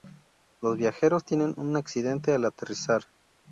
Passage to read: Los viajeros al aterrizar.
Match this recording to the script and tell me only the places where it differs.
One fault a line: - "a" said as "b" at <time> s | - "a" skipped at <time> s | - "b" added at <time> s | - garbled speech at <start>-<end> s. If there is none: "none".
- "tienen un accidente" added at 1.2 s